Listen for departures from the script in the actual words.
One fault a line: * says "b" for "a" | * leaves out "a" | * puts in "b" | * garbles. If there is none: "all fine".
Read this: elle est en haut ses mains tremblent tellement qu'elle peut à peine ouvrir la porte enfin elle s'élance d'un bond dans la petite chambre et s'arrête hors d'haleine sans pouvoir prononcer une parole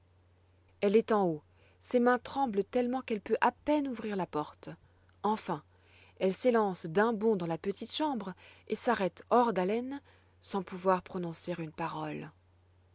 all fine